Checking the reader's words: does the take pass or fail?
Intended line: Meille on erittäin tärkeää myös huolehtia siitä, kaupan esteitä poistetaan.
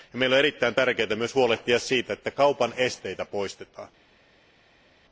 fail